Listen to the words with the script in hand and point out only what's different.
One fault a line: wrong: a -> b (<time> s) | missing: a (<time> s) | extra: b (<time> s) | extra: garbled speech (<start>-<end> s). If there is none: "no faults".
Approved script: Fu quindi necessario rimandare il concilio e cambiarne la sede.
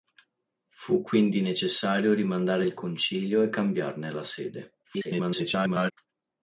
extra: garbled speech (4.8-5.9 s)